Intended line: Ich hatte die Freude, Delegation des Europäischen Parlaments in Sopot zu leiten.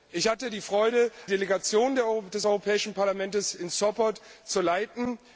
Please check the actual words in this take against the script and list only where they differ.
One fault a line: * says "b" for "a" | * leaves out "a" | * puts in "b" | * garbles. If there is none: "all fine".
all fine